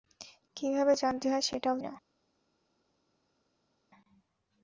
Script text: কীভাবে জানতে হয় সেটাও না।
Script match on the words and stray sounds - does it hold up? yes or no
yes